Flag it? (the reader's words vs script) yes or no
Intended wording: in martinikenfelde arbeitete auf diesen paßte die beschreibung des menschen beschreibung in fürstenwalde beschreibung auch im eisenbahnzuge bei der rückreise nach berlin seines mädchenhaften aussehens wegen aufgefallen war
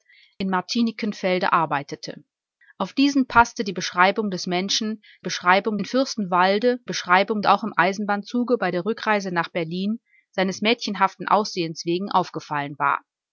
no